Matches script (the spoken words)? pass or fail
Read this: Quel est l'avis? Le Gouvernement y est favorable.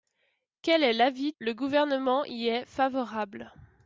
pass